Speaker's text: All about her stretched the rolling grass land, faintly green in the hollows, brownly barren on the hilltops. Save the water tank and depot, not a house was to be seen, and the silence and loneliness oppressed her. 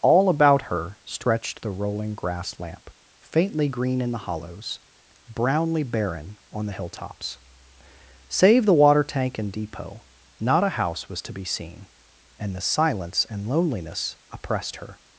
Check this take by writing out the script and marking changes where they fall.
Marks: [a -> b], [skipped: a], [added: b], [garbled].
All about her stretched the rolling grass [land, -> lamp] faintly green in the hollows, brownly barren on the hilltops. Save the water tank and depot, not a house was to be seen, and the silence and loneliness oppressed her.